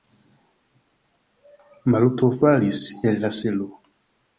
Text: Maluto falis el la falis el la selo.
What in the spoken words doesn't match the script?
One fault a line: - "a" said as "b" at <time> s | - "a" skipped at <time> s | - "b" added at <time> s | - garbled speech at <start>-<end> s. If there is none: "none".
- "falis el la" skipped at 3.4 s